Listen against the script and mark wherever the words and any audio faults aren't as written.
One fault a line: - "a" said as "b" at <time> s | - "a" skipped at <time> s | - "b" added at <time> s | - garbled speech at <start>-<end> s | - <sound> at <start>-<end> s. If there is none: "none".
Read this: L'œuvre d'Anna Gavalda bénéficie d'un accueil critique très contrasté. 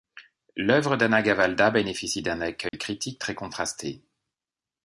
- dropout at 2.7-2.7 s